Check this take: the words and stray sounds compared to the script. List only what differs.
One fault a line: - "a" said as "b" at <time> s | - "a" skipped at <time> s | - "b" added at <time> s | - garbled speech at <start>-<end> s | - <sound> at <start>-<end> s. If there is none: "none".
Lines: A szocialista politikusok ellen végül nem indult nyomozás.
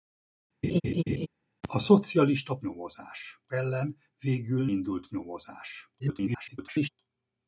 - laugh at 0.6-1.3 s
- "politikusok" said as "nyomozás" at 2.6 s
- "nem" skipped at 4.7 s
- garbled speech at 6.0-6.9 s